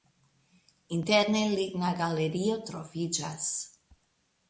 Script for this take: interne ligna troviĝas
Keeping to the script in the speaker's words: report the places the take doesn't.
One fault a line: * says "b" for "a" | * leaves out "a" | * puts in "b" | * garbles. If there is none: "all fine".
* puts in "galerio"